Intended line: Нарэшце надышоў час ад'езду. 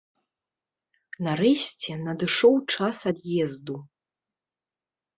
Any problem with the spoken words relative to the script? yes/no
no